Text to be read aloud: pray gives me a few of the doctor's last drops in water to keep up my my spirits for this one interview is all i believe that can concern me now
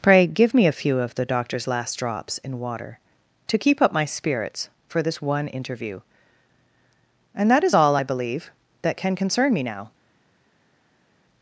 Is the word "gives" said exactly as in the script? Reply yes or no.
no